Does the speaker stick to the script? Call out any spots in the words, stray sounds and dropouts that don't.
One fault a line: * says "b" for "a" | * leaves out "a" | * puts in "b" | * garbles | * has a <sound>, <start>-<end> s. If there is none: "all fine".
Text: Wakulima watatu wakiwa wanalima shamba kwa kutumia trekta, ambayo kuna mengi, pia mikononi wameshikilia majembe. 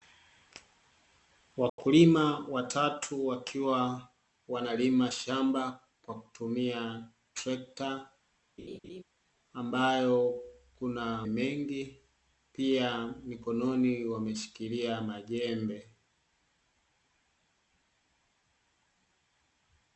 * has a dropout, 1.7-1.8 s
* has a laugh, 8.6-9.0 s